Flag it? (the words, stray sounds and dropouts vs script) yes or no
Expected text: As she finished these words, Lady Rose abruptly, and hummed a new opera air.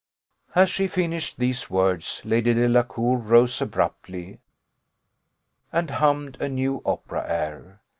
yes